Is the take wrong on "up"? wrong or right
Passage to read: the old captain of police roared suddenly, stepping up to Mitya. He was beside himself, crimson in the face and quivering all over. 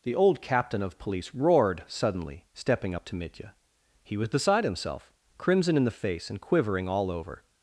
right